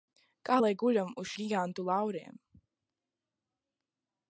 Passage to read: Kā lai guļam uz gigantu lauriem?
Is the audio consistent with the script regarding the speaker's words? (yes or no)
yes